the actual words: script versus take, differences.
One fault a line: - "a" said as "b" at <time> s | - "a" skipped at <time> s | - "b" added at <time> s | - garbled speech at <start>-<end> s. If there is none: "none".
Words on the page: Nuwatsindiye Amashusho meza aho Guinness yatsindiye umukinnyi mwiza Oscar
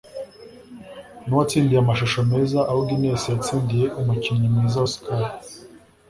none